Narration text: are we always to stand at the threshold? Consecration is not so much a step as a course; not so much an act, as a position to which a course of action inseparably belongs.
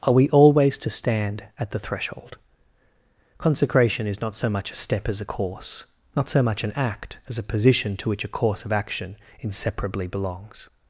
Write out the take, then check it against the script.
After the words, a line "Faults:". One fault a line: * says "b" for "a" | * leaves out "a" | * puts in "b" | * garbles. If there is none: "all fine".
are we always to stand at the threshold? Consecration is not so much a step as a course; not so much an act, as a position to which a course of action inseparably belongs.
Faults:
all fine